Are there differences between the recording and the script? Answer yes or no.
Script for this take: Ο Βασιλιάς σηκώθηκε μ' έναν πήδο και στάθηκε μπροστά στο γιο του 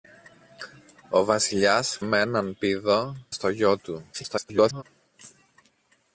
yes